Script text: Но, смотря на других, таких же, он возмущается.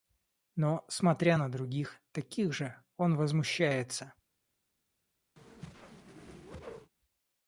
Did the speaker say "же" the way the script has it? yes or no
yes